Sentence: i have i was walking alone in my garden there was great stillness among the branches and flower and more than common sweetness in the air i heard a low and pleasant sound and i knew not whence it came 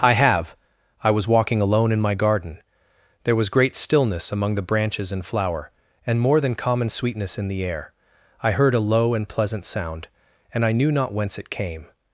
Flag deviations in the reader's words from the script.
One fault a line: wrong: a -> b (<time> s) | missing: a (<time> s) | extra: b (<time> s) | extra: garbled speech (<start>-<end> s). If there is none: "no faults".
no faults